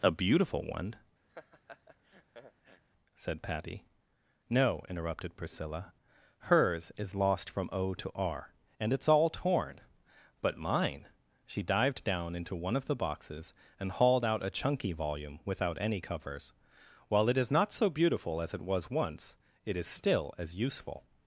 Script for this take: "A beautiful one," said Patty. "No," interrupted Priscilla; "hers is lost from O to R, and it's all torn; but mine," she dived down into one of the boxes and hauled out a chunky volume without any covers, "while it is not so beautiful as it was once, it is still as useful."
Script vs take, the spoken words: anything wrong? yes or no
no